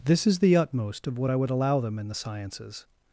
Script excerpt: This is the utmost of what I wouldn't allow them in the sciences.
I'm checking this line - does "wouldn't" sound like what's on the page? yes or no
no